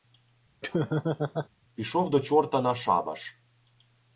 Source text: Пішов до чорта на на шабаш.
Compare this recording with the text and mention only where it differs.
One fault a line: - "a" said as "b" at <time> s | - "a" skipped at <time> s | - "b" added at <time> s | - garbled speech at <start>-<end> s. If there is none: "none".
- "на" skipped at 2.7 s